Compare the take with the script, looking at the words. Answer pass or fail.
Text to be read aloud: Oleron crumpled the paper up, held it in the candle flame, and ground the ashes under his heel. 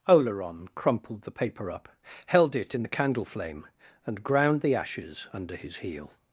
pass